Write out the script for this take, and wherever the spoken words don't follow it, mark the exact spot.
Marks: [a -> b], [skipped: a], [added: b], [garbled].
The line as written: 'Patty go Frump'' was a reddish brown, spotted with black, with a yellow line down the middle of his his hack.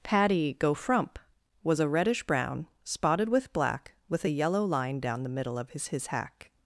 'Patty go Frump'' was a reddish brown, spotted with black, with a yellow line down the middle of his his hack.